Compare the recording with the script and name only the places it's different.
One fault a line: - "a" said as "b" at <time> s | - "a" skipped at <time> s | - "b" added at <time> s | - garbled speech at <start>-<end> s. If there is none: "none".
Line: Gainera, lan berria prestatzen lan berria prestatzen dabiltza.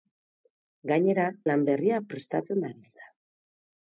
- "lan berria prestatzen" skipped at 2.7 s